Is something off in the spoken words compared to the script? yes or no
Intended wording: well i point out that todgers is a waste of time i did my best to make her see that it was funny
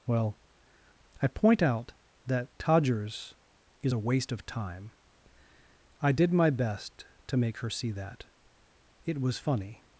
no